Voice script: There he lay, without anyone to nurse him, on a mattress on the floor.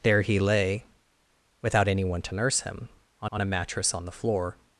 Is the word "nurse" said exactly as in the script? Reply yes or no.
yes